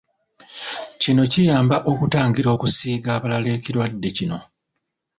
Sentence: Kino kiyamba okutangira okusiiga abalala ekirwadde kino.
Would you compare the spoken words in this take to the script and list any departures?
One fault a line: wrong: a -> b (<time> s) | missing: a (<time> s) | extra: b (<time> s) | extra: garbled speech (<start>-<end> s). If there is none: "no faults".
no faults